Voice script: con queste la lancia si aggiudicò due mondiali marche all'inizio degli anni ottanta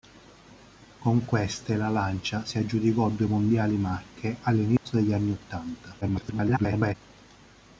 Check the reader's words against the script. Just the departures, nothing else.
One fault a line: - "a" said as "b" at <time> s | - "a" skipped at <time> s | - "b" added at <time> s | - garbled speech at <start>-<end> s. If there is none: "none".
- garbled speech at 6.0-6.9 s